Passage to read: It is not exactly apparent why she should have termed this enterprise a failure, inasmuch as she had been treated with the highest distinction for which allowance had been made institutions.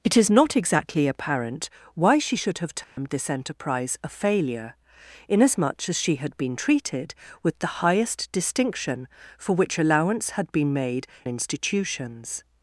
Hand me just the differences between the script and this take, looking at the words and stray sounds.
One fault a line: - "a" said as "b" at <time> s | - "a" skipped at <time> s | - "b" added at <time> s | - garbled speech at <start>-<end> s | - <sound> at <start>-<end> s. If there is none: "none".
- dropout at 2.8-3.0 s